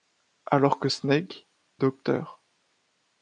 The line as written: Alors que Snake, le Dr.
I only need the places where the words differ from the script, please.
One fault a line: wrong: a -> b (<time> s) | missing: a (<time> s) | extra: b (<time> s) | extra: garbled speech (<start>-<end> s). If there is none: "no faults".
missing: le (1.5 s)